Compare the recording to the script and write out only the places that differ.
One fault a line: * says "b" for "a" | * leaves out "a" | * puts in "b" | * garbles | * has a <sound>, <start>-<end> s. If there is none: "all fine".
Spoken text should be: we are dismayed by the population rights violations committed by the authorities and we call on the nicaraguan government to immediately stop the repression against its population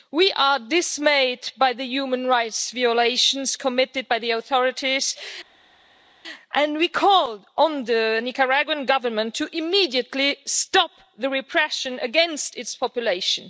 * says "human" for "population"